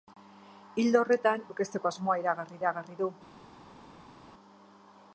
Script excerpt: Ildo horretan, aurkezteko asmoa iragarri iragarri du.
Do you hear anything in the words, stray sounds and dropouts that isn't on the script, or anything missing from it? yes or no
no